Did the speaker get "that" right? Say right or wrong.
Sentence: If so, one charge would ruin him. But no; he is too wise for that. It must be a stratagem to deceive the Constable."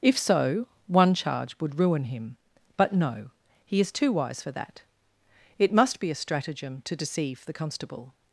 right